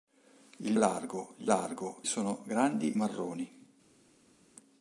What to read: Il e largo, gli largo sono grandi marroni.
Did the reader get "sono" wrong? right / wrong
right